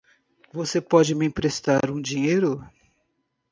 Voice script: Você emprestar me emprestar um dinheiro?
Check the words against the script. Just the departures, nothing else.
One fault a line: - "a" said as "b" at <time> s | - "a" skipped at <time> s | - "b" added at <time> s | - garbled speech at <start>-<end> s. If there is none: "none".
- "emprestar" said as "pode" at 0.8 s